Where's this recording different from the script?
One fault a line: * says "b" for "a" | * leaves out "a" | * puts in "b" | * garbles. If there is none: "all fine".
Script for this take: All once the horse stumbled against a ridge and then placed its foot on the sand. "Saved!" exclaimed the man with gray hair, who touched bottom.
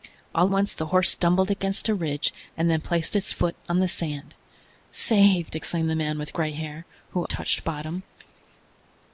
all fine